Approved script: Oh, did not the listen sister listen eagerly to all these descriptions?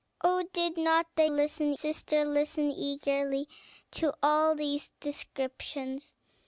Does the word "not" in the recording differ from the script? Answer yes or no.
no